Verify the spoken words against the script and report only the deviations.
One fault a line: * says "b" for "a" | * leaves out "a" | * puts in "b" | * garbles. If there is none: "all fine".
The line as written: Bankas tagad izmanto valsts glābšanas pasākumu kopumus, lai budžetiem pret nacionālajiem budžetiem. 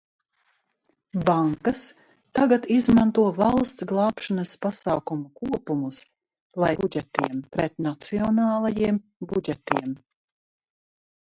all fine